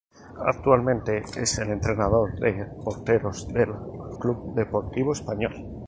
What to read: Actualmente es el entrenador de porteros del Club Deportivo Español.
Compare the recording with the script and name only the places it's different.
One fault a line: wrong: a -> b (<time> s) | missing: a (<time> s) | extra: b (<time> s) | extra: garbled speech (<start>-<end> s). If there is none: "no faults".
no faults